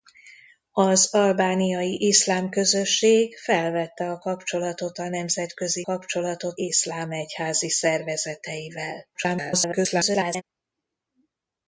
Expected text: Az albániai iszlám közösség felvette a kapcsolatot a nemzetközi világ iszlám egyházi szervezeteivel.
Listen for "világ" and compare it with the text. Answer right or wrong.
wrong